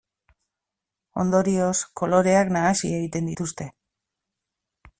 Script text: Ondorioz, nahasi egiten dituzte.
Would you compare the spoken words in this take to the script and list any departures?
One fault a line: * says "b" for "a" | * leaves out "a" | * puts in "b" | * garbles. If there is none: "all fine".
* puts in "koloreak"